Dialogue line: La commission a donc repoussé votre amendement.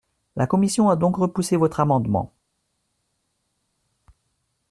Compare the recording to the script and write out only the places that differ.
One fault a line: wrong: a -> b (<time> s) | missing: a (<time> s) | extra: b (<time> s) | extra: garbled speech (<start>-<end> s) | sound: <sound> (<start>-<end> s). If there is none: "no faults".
no faults